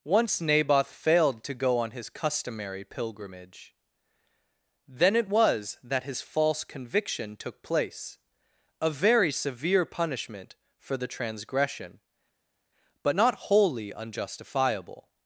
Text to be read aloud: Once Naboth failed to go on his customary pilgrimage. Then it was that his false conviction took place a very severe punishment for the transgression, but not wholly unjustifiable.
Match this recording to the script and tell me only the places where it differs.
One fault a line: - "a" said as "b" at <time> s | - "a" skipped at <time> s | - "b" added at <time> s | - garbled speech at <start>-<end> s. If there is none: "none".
none